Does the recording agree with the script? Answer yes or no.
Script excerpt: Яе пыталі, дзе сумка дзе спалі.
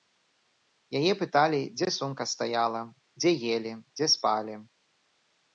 no